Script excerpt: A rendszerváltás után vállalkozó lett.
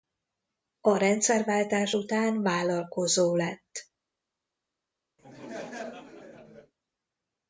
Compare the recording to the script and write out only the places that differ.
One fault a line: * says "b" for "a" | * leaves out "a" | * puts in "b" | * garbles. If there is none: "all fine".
all fine